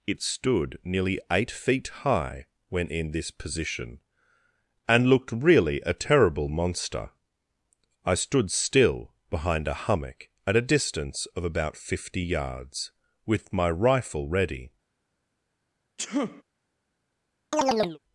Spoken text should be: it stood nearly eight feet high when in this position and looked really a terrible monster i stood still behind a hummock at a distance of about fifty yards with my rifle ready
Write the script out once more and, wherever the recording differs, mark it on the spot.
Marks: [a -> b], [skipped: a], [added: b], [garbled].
it stood nearly eight feet high when in this position and looked really a terrible monster i stood still behind a hummock at a distance of about fifty yards with my rifle ready